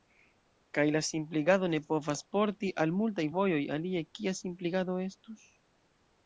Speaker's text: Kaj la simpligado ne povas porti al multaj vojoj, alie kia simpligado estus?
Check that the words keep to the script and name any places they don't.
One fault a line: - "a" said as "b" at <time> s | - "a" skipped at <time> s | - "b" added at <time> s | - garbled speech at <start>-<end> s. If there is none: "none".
none